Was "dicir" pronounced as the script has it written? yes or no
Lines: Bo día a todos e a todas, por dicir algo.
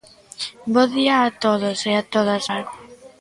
no